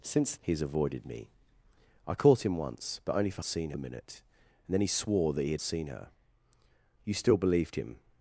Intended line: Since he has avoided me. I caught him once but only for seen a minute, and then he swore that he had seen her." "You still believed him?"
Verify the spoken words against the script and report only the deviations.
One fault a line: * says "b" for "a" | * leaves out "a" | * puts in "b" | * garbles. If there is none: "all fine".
all fine